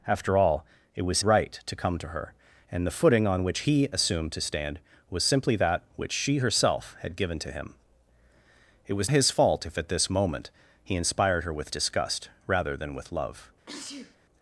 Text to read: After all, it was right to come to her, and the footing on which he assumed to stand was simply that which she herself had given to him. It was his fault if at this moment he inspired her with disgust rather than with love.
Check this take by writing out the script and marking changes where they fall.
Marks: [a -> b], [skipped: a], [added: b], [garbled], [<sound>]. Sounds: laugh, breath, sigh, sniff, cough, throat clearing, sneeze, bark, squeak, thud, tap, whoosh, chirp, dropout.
After all, it was right to come to her, and the footing on which he assumed to stand was simply that which she herself had given to him. It was his fault if at this moment he inspired her with disgust rather than with love. [sneeze]